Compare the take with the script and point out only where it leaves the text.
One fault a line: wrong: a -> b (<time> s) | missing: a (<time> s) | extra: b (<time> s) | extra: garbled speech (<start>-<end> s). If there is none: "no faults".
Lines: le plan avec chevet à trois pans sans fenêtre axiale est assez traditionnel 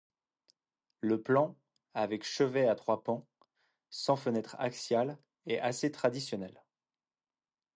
no faults